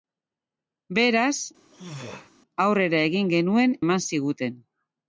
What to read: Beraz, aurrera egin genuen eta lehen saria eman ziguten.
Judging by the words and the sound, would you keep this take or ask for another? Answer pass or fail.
fail